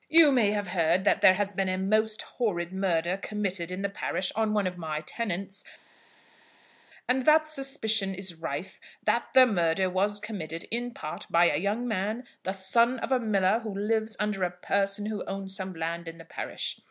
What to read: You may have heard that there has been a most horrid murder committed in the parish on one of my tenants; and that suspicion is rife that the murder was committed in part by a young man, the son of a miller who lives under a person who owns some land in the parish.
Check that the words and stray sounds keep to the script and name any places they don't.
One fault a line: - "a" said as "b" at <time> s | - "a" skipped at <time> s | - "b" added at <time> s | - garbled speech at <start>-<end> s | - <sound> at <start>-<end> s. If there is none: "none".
none